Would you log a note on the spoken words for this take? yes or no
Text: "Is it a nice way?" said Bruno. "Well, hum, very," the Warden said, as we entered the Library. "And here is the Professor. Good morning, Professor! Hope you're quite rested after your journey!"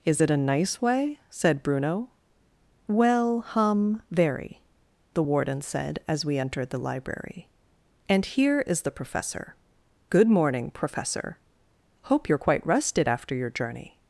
no